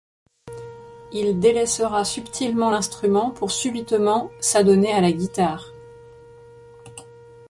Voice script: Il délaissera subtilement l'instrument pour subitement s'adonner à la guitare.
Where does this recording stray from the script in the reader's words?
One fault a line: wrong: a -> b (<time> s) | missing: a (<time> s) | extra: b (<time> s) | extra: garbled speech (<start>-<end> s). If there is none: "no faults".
no faults